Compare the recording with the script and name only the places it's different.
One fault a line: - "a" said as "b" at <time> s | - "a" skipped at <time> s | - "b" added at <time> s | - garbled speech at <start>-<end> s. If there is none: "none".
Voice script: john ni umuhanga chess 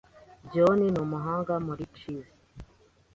- "muri" added at 1.6 s